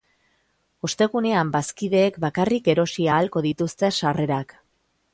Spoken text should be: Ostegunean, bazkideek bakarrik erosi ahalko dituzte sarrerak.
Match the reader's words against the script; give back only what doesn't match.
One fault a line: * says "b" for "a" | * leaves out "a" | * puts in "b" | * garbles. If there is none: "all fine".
all fine